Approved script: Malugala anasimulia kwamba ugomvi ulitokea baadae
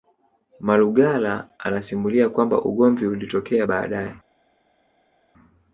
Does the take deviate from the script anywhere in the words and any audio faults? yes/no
no